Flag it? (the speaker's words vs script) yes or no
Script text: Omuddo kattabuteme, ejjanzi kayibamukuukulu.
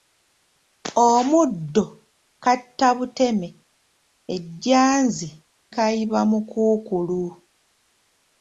no